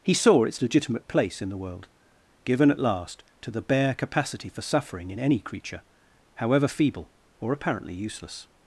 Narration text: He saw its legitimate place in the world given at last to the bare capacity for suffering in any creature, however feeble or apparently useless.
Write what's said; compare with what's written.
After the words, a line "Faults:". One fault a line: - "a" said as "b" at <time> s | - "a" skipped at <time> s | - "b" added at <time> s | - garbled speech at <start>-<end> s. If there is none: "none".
He saw its legitimate place in the world given at last to the bare capacity for suffering in any creature, however feeble or apparently useless.
Faults:
none